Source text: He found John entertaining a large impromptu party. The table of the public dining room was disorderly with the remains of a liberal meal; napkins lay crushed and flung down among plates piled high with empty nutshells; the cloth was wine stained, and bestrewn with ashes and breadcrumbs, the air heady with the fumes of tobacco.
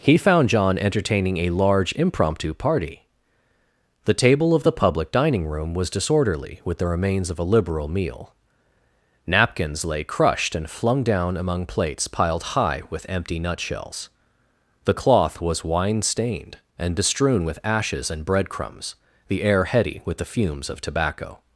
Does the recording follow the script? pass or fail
pass